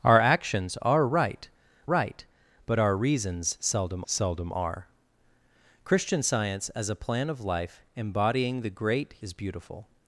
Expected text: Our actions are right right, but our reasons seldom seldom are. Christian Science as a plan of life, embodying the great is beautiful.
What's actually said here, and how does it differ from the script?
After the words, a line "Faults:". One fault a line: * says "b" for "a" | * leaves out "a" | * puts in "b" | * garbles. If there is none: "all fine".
Our actions are right right, but our reasons seldom seldom are. Christian Science as a plan of life, embodying the great is beautiful.
Faults:
all fine